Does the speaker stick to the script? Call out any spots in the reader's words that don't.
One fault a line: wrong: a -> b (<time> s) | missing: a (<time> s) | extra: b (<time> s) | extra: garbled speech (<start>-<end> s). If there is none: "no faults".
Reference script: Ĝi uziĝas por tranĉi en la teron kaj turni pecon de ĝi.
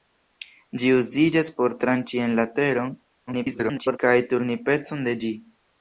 extra: garbled speech (3.3-4.0 s)